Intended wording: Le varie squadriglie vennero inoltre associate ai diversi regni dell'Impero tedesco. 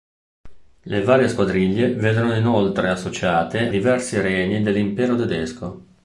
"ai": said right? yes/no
no